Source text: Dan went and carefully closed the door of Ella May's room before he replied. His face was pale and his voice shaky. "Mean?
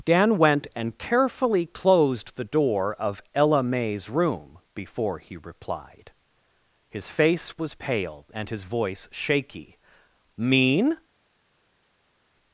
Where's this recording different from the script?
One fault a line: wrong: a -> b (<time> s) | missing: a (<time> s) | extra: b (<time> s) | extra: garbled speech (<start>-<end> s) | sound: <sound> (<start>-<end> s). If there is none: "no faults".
no faults